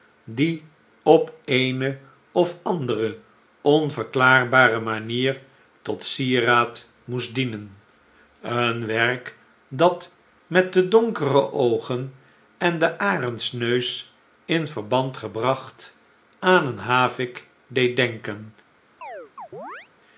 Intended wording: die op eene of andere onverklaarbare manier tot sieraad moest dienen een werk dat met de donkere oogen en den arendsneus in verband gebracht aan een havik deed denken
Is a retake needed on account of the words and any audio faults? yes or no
yes